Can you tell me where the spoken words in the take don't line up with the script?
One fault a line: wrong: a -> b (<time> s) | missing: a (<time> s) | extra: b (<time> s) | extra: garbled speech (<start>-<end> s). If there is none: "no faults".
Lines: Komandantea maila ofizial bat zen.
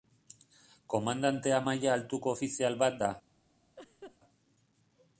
extra: altuko (2.0 s)
wrong: zen -> da (3.0 s)